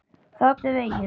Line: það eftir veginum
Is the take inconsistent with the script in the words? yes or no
no